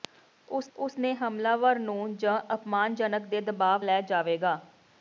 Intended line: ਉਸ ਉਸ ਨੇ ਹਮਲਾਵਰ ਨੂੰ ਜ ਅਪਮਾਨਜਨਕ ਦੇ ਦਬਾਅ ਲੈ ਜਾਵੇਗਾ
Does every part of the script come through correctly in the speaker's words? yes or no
yes